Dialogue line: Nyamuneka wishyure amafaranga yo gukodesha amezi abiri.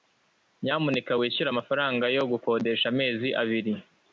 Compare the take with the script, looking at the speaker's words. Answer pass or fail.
pass